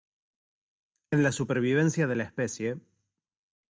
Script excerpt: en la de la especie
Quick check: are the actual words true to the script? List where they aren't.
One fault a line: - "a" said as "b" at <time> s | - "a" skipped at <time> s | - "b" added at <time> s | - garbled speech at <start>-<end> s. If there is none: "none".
- "supervivencia" added at 1.3 s